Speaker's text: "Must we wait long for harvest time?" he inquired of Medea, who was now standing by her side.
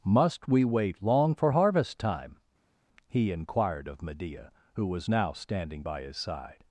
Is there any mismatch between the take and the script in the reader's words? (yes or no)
yes